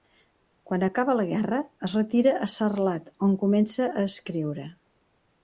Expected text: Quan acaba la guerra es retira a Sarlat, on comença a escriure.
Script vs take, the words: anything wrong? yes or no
no